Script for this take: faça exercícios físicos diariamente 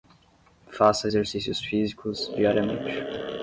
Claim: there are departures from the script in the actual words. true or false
false